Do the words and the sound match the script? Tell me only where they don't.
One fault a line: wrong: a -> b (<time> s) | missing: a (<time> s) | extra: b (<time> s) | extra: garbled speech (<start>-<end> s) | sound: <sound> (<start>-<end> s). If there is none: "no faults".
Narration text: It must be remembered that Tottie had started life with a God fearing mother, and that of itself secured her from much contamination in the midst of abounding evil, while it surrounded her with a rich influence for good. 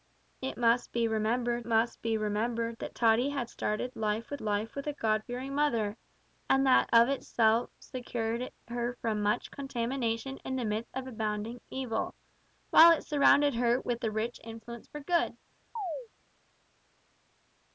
extra: must be remembered (1.6 s)
extra: life with (4.4 s)
sound: chirp (15.8-16.1 s)